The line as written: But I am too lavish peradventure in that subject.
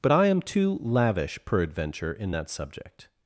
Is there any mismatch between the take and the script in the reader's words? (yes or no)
no